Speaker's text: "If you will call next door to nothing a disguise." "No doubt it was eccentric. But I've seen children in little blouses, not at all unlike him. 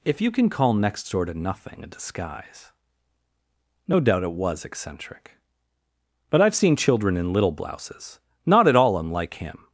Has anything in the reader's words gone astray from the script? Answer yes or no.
yes